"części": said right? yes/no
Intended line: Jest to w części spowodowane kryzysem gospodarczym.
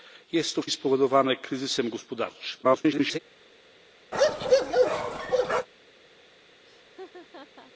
no